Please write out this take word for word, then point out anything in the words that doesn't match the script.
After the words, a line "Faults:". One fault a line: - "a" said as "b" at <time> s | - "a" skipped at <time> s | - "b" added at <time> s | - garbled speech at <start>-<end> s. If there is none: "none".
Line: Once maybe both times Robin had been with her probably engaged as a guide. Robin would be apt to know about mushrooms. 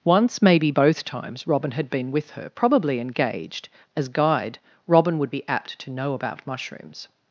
Once maybe both times Robin had been with her probably engaged as guide. Robin would be apt to know about mushrooms.
Faults:
- "a" skipped at 4.1 s